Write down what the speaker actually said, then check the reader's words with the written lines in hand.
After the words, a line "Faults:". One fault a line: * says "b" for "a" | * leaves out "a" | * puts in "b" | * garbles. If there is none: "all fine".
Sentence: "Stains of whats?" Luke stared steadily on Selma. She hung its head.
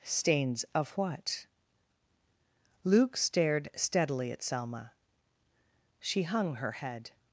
"Stains of what?" Luke stared steadily at Selma. She hung her head.
Faults:
* says "what" for "whats"
* says "at" for "on"
* says "her" for "its"